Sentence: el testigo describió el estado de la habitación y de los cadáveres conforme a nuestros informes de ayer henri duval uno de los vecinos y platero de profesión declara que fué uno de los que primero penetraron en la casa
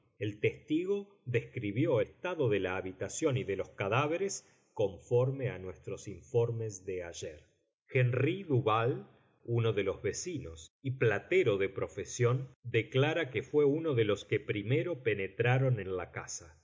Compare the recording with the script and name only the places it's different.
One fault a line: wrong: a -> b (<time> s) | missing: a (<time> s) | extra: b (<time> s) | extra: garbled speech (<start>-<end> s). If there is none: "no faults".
missing: el (2.0 s)